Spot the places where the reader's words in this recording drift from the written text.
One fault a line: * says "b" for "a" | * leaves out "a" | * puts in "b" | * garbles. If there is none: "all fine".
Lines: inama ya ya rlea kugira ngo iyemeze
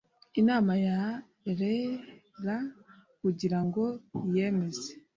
* leaves out "ya"